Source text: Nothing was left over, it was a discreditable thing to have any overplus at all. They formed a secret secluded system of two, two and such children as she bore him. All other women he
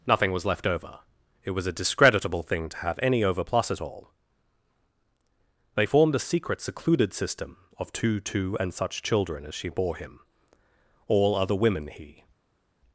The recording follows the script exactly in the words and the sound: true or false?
true